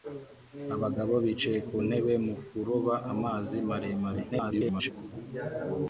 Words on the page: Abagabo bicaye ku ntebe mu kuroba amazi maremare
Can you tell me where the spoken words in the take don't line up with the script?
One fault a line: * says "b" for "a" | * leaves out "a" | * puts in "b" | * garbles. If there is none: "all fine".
* garbles